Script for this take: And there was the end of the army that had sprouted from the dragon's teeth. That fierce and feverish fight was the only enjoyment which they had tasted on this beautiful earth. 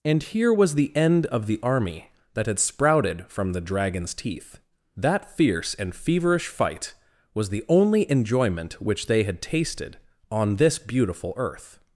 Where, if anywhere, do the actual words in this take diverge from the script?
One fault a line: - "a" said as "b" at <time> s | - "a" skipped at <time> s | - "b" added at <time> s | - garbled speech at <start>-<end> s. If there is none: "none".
- "there" said as "here" at 0.2 s